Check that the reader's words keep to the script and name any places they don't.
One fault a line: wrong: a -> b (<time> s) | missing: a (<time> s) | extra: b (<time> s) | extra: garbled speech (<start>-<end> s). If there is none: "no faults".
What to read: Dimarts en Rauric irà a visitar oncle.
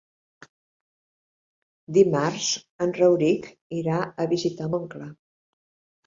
no faults